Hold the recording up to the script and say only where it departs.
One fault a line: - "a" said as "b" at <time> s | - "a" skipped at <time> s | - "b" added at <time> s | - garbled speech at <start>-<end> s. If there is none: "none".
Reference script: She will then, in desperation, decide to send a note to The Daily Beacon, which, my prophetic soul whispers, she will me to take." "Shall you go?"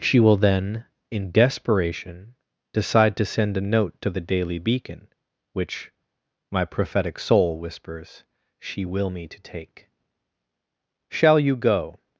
none